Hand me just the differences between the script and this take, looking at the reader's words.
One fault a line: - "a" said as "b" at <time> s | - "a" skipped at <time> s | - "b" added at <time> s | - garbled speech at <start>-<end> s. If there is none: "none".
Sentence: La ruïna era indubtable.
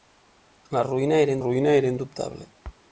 - "ruïna era" added at 1.4 s